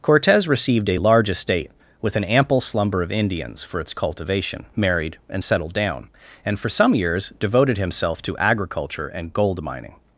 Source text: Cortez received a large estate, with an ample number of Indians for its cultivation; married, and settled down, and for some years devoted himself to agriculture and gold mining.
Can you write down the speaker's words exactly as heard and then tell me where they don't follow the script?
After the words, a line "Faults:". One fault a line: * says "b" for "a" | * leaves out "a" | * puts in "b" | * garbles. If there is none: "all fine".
Cortez received a large estate, with an ample slumber of Indians for its cultivation; married, and settled down, and for some years devoted himself to agriculture and gold mining.
Faults:
* says "slumber" for "number"